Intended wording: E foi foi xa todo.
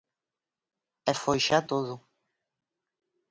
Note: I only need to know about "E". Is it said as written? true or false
true